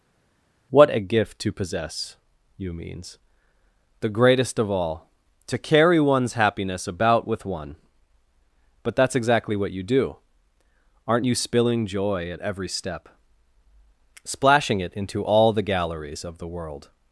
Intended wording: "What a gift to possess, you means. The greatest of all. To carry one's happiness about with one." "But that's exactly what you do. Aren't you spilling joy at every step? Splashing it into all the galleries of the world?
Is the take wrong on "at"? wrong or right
right